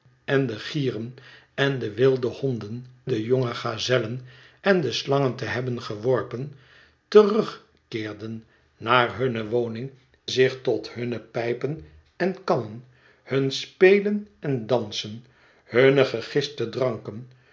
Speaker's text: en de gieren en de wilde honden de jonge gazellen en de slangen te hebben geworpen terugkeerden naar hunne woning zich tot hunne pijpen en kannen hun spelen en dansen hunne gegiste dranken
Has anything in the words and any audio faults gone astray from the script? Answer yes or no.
no